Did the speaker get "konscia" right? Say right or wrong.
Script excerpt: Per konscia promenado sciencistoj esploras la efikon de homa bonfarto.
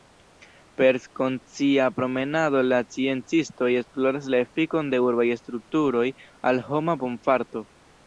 right